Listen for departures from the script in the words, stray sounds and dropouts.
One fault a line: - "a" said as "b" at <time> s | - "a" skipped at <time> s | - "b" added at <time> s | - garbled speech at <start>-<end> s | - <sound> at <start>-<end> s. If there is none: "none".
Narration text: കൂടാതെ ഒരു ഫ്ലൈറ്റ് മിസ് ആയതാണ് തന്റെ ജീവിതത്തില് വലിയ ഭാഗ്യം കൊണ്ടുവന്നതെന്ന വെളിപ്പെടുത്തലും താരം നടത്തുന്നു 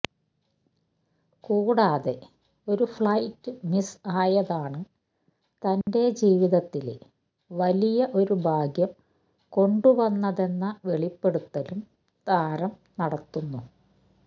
- dropout at 5.8-5.9 s
- "ഒരു" added at 8.1 s